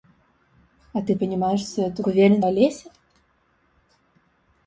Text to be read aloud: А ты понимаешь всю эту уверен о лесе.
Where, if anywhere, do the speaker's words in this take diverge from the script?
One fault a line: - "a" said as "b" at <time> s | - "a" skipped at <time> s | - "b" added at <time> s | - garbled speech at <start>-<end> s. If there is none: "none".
none